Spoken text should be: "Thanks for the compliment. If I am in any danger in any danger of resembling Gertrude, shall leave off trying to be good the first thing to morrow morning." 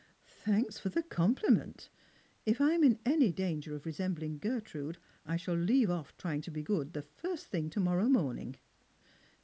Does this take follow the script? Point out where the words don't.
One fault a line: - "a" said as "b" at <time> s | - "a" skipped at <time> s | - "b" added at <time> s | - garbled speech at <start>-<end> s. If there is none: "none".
- "in any danger" skipped at 3.8 s
- "I" added at 5.3 s